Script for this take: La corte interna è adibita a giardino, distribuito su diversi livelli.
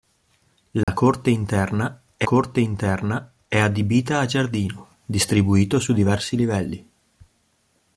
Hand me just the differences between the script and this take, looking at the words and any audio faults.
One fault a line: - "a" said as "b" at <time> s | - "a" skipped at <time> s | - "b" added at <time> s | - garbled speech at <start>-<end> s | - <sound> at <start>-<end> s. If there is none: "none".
- dropout at 0.8-0.9 s
- "corte interna è" added at 2.2 s